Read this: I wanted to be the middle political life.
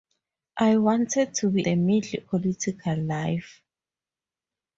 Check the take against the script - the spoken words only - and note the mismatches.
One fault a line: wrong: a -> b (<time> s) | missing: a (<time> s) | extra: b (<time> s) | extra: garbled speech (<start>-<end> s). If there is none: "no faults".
no faults